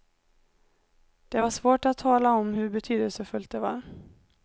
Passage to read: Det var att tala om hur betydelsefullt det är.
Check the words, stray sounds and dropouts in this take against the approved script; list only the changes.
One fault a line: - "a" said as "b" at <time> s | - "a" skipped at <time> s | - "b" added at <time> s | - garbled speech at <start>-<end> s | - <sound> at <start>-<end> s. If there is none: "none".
- "svårt" added at 1.5 s
- "är" said as "var" at 3.6 s